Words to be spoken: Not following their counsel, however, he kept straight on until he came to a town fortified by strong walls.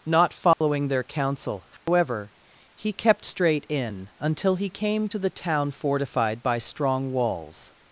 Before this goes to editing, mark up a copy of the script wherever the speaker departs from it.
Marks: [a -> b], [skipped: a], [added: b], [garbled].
Not following their counsel, however, he kept straight [on -> in] until he came to [a -> the] town fortified by strong walls.